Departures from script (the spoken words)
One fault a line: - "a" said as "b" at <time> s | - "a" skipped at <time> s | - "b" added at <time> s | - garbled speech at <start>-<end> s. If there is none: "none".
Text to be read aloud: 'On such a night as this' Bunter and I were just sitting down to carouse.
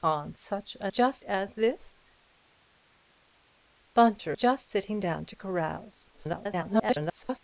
- "night" said as "just" at 0.9 s
- "and I were" skipped at 4.4 s
- garbled speech at 6.1-7.4 s